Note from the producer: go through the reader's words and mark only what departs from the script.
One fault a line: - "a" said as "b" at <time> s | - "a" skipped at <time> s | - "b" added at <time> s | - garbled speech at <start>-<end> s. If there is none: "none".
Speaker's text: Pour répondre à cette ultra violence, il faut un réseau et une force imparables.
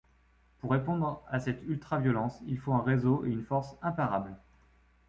none